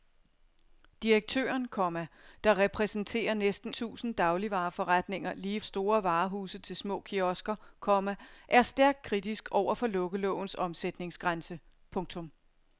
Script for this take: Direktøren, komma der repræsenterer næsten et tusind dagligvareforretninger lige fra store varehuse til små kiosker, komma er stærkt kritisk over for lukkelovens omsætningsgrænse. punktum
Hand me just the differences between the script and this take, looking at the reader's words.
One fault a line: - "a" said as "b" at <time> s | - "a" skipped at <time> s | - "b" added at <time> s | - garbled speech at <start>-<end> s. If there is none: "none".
- "et" skipped at 3.7 s
- "fra" skipped at 5.6 s